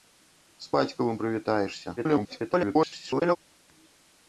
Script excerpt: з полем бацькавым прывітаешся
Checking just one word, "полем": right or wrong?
wrong